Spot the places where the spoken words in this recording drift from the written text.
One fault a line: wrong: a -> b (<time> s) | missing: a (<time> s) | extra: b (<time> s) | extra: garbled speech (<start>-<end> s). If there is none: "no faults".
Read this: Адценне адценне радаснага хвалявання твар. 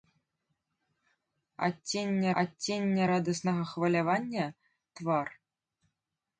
no faults